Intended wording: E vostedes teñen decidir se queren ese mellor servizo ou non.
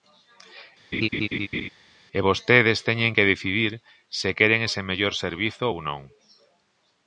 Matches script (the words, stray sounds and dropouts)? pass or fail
fail